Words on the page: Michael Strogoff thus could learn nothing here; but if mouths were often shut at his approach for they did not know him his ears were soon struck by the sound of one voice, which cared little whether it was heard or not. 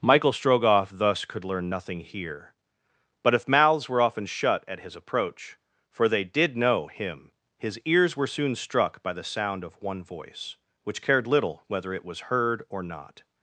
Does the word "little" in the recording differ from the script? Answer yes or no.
no